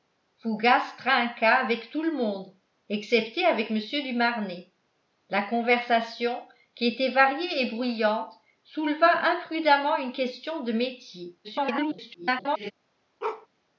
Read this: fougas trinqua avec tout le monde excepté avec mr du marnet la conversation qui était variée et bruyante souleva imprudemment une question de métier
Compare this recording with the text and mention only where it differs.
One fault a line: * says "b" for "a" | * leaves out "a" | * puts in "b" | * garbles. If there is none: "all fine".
* garbles